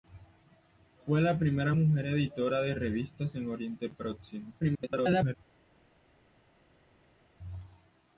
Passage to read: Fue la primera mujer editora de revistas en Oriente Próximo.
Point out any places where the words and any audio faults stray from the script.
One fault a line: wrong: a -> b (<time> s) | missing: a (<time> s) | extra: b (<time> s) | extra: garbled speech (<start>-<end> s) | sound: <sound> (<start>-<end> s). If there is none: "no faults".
extra: garbled speech (4.6-5.3 s)